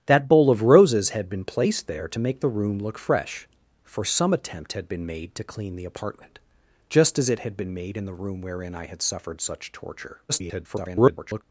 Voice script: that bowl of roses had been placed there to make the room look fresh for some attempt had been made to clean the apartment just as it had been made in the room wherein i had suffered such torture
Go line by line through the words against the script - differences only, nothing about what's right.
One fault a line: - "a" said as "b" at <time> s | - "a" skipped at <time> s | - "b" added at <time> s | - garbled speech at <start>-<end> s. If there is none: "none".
- garbled speech at 10.3-11.4 s